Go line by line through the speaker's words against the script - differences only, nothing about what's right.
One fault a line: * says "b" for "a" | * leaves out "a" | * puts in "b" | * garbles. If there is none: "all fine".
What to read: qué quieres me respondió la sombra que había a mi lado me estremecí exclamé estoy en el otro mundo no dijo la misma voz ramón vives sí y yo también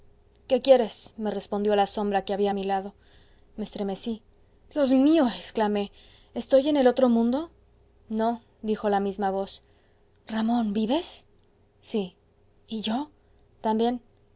* puts in "dios mío"